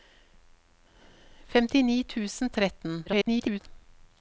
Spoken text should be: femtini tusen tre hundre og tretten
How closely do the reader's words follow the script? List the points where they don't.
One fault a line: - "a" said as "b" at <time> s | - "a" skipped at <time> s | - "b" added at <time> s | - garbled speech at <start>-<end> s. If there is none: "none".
- "tre hundre" skipped at 2.5 s
- garbled speech at 3.1-3.6 s